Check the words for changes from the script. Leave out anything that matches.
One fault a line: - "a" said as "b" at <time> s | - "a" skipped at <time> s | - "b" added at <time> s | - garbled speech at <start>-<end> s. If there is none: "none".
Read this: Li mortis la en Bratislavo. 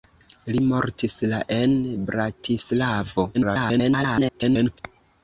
- garbled speech at 3.3-4.8 s